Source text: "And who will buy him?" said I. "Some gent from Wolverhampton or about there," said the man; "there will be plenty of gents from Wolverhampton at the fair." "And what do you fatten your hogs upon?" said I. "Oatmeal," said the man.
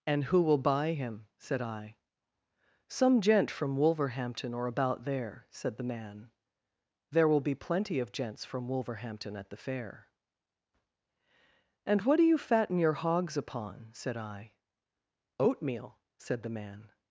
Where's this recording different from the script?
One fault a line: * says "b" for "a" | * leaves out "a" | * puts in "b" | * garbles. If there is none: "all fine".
all fine